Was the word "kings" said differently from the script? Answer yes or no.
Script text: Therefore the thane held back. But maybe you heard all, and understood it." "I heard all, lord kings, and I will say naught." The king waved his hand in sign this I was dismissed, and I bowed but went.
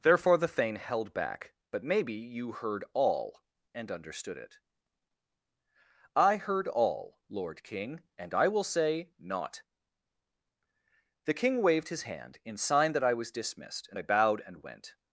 yes